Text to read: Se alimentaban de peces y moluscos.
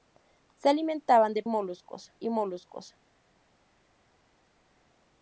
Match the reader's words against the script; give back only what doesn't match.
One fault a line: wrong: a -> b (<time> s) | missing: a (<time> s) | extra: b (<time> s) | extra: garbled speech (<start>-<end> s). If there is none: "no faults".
wrong: peces -> moluscos (1.4 s)